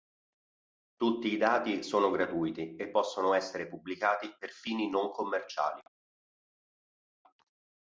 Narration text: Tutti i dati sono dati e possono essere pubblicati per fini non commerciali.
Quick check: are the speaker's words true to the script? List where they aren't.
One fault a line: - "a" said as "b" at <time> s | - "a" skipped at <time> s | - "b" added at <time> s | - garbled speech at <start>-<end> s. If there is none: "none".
- "dati" said as "gratuiti" at 2.1 s